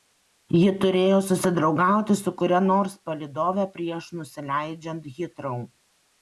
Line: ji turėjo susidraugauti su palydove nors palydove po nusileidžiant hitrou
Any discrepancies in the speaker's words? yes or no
yes